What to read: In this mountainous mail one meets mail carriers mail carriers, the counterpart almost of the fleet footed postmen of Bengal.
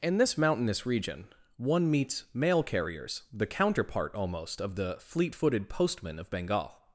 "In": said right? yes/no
yes